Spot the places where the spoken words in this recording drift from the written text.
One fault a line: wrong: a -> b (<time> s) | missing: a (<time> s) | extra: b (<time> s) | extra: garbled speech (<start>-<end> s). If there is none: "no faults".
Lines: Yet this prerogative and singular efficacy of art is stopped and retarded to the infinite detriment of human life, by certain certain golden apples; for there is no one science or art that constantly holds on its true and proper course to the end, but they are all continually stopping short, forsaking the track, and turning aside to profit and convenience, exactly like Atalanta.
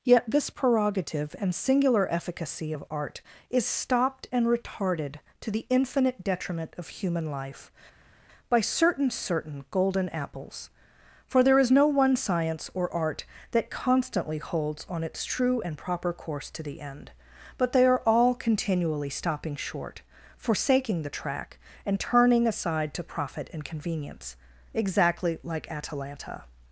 no faults